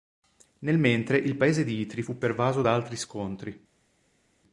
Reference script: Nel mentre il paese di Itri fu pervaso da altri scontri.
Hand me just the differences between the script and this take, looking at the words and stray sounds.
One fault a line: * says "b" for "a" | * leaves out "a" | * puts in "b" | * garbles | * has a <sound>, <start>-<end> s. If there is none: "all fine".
all fine